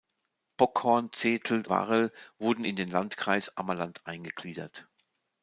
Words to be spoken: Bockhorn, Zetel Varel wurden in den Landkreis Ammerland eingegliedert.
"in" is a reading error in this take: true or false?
false